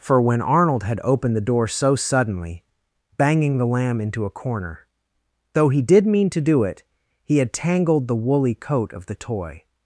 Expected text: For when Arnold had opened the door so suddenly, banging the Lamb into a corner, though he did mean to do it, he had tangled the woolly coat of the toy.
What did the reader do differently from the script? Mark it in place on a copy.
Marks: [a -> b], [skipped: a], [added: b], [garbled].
For when Arnold had opened the door so suddenly, banging the Lamb into a corner, though he did mean to do it, he had tangled the woolly coat of the toy.